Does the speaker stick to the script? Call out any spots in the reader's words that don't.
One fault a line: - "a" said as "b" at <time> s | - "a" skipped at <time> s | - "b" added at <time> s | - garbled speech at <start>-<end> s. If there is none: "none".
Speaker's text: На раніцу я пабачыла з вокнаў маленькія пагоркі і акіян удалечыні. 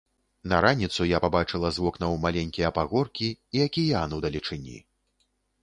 none